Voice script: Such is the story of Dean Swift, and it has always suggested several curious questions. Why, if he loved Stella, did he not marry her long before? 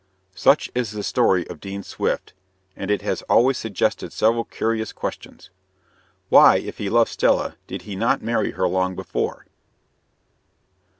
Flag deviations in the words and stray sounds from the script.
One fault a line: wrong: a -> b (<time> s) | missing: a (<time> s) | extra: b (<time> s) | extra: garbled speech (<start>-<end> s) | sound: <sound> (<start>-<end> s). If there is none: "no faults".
no faults